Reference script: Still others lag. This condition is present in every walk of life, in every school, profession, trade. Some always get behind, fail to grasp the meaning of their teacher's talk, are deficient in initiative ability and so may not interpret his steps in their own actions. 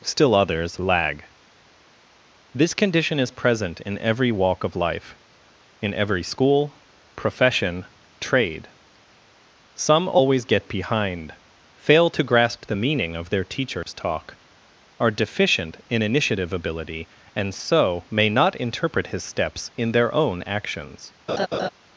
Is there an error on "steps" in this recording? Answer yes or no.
no